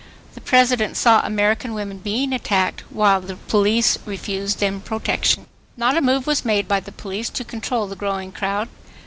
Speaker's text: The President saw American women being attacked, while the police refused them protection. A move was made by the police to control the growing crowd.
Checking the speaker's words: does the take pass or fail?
fail